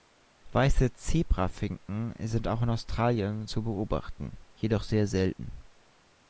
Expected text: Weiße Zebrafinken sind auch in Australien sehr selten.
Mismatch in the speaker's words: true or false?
true